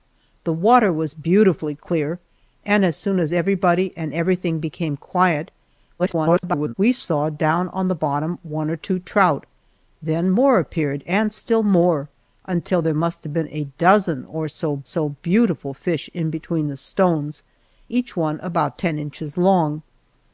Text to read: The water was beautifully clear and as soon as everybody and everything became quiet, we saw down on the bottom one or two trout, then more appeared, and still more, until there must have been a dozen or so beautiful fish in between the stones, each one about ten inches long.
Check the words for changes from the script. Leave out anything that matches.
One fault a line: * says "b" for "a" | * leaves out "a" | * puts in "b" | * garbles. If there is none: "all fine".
* garbles
* puts in "so"